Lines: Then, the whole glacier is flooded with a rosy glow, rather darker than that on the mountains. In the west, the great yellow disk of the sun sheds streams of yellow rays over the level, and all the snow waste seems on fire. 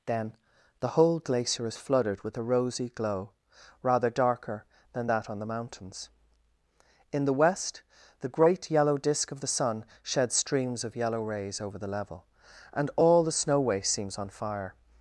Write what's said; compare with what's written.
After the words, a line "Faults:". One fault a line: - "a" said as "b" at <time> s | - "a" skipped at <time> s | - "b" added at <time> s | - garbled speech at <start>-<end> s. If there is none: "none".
Then, the whole glacier is flooded with a rosy glow, rather darker than that on the mountains. In the west, the great yellow disk of the sun sheds streams of yellow rays over the level, and all the snow waste seems on fire.
Faults:
none